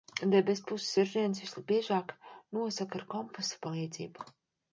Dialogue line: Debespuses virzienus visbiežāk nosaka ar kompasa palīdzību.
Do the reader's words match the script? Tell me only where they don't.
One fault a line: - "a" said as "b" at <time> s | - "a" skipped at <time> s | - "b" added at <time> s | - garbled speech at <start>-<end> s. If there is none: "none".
none